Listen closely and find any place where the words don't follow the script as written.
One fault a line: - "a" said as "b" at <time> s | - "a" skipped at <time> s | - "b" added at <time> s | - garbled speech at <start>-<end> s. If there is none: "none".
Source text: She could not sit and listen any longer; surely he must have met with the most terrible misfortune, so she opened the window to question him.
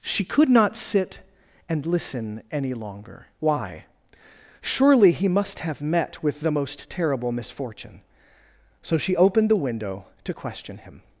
- "why" added at 3.4 s